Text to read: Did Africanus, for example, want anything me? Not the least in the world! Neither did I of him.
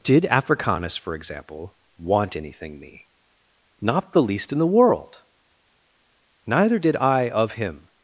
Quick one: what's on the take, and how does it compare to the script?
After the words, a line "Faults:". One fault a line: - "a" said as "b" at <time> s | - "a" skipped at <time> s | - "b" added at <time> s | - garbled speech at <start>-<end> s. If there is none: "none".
Did Africanus, for example, want anything me? Not the least in the world! Neither did I of him.
Faults:
none